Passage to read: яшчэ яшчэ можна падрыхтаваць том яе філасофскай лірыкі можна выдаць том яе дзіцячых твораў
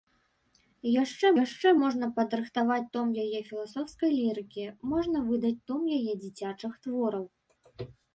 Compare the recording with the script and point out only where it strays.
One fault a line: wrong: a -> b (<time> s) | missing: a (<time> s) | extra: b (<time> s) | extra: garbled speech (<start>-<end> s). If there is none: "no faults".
no faults